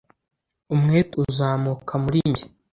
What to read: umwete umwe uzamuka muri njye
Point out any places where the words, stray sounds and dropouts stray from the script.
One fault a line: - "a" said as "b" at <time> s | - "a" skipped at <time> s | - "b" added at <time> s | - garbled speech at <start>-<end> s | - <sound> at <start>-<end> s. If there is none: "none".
- "umwe" skipped at 1.1 s